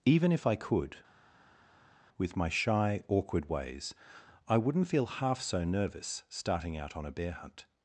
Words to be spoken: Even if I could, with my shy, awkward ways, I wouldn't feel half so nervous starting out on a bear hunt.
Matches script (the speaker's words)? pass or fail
pass